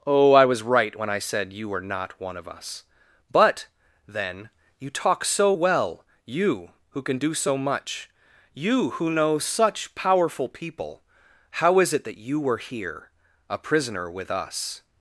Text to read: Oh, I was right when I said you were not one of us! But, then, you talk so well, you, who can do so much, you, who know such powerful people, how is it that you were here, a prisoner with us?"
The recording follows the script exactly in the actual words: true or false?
true